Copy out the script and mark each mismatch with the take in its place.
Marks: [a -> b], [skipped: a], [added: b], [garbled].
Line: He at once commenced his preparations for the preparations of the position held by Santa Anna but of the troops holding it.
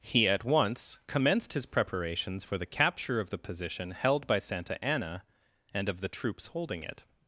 He at once commenced his preparations for the [preparations -> capture] of the position held by Santa Anna [but -> and] of the troops holding it.